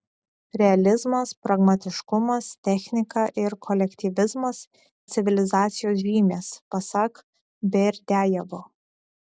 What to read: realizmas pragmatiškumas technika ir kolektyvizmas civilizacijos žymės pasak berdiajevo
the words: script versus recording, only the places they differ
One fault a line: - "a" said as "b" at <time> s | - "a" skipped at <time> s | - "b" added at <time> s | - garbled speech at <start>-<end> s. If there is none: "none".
none